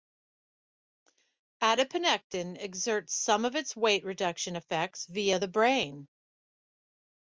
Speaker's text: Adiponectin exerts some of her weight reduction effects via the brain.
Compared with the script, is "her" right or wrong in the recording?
wrong